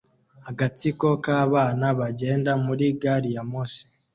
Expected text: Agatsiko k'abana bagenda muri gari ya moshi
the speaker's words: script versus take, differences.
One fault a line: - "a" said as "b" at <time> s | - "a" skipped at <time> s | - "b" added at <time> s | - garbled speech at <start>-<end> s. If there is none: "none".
none